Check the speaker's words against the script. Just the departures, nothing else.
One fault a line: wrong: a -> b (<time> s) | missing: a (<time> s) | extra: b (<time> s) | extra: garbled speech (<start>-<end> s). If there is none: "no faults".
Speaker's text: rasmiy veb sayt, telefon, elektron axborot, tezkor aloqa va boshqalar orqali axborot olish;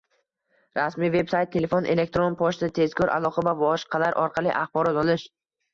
wrong: axborot -> pochta (2.4 s)